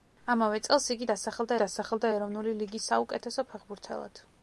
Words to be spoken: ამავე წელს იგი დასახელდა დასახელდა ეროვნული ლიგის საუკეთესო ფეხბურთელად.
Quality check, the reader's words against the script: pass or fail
pass